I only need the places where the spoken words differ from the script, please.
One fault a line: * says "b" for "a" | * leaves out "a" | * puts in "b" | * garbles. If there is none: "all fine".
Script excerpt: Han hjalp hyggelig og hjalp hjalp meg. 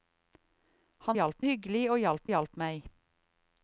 all fine